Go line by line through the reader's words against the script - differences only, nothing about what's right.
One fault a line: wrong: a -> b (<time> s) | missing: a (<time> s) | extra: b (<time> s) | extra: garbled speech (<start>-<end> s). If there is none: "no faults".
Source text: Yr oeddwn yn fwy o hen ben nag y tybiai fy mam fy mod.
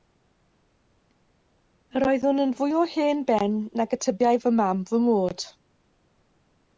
no faults